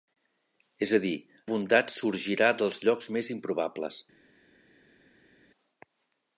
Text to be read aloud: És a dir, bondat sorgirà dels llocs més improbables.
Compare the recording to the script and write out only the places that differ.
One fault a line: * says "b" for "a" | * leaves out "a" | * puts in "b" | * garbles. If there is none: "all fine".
all fine